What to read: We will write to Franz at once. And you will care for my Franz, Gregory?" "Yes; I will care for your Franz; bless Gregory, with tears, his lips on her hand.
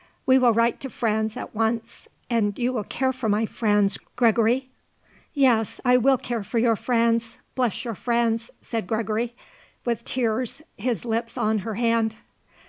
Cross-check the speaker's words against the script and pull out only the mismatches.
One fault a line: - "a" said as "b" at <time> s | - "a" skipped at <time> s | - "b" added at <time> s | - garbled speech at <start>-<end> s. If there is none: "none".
- "your Franz said" added at 7.8 s